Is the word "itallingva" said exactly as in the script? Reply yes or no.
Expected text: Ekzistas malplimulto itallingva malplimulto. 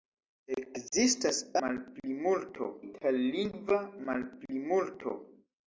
yes